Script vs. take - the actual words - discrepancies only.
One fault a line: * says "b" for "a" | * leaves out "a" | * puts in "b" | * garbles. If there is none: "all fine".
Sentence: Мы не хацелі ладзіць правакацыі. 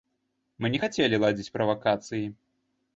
all fine